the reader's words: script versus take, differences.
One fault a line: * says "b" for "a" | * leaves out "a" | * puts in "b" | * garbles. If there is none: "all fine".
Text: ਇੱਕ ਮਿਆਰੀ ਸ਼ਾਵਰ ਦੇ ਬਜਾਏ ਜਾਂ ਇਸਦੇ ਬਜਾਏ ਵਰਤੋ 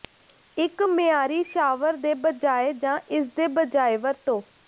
all fine